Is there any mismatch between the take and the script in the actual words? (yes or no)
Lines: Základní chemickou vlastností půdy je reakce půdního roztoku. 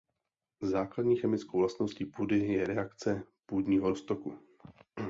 no